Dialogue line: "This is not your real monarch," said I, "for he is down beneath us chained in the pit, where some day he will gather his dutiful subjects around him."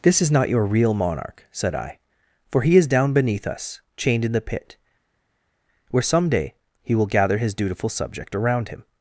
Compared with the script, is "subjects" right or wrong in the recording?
wrong